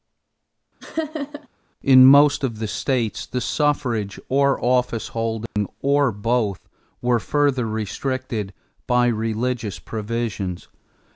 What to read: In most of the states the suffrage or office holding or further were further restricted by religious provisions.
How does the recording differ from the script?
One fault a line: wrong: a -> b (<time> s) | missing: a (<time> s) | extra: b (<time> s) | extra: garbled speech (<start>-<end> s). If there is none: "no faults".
wrong: further -> both (6.1 s)